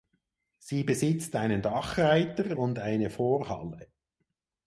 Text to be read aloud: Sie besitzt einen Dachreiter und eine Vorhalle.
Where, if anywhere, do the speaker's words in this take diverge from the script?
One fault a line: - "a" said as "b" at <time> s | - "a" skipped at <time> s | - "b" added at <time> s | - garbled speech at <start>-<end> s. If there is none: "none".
none